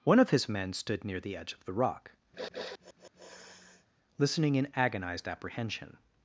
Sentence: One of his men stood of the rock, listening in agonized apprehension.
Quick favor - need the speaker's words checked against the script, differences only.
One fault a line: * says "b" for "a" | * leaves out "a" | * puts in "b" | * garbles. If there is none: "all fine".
* puts in "near the edge"